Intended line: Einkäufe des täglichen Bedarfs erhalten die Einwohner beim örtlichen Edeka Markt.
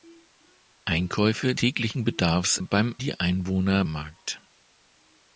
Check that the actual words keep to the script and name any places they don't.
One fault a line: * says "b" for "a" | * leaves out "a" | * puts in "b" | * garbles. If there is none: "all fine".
* leaves out "des"
* says "beim" for "erhalten"
* leaves out "beim örtlichen Edeka"